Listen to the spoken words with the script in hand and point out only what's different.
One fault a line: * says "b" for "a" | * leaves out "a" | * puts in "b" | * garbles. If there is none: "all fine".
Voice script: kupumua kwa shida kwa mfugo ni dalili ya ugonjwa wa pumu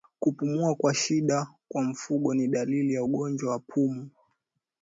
all fine